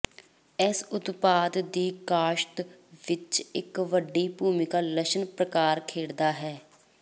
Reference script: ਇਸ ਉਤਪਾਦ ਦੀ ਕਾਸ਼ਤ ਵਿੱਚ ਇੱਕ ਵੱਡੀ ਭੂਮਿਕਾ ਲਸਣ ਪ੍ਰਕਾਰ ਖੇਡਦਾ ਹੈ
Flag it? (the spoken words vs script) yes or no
no